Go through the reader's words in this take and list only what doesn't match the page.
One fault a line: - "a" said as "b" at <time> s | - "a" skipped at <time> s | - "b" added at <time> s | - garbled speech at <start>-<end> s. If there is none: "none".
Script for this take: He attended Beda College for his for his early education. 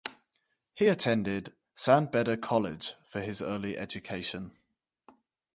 - "San" added at 1.7 s
- "for his" skipped at 3.4 s